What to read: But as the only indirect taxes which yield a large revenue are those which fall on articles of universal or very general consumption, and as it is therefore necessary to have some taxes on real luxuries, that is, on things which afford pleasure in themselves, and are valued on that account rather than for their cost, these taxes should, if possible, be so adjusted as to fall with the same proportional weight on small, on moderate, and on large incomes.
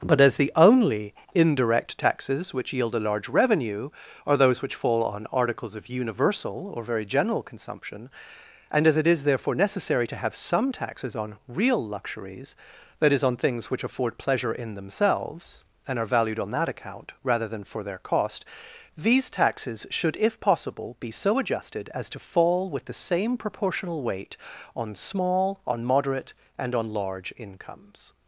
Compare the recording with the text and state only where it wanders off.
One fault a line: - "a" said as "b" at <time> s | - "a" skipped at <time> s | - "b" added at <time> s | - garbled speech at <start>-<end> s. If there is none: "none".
none